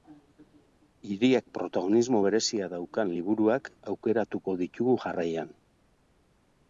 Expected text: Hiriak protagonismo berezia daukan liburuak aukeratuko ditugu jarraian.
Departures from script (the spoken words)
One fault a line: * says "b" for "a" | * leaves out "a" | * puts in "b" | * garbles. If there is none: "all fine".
all fine